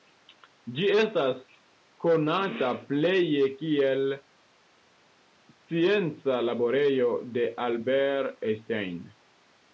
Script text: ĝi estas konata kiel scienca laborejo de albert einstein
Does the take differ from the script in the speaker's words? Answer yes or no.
yes